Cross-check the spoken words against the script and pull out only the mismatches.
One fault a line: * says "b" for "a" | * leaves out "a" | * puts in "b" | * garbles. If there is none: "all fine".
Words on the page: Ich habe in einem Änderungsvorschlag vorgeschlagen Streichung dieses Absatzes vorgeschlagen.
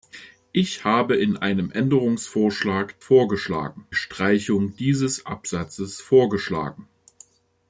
all fine